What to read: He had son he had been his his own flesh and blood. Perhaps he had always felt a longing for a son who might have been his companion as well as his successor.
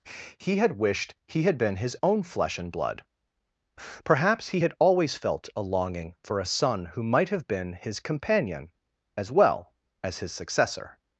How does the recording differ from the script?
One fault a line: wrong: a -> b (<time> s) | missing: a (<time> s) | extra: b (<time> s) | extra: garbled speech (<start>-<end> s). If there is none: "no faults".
wrong: son -> wished (0.8 s)
missing: his (1.9 s)